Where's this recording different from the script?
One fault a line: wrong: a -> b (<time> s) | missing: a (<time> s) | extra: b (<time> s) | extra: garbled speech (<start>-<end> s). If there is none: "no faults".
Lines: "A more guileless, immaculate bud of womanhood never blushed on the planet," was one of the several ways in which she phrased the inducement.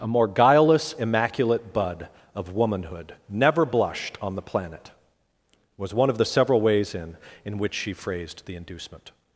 extra: in (7.5 s)